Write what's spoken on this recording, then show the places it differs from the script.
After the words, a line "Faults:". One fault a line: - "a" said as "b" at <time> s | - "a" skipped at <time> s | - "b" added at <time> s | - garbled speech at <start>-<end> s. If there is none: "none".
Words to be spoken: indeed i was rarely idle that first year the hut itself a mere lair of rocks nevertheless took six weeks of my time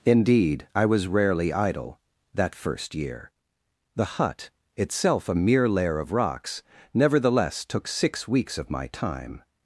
indeed i was rarely idle that first year the hut itself a mere lair of rocks nevertheless took six weeks of my time
Faults:
none